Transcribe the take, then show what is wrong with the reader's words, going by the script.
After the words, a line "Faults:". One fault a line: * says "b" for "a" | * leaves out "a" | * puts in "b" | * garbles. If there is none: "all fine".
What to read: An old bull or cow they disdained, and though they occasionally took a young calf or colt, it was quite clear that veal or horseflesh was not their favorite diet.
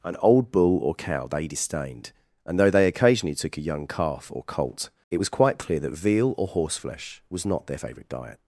An old bull or cow they disdained, and though they occasionally took a young calf or colt, it was quite clear that veal or horseflesh was not their favorite diet.
Faults:
all fine